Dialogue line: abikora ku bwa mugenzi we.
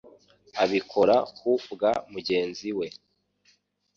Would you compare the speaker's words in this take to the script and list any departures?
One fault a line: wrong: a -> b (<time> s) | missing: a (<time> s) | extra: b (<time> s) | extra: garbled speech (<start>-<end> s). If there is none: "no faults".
no faults